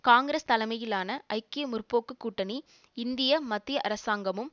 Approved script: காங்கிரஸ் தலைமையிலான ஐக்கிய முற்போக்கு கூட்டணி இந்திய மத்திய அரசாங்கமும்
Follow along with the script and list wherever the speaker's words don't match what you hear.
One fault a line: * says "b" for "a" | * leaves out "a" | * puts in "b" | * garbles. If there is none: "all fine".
all fine